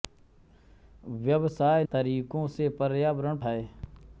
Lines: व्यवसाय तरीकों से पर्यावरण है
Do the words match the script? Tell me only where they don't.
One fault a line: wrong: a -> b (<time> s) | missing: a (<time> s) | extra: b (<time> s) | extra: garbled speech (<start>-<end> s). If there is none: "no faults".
no faults